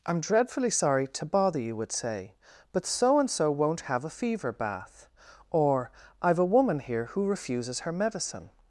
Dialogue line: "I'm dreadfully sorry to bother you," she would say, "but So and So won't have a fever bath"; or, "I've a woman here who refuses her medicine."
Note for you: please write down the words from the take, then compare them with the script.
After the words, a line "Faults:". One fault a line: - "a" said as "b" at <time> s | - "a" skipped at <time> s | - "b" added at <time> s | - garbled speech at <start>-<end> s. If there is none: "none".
"I'm dreadfully sorry to bother you," would say, "but So and So won't have a fever bath"; or, "I've a woman here who refuses her medicine."
Faults:
- "she" skipped at 1.8 s